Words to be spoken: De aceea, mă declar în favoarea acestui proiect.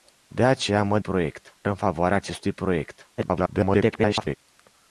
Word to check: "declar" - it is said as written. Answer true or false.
false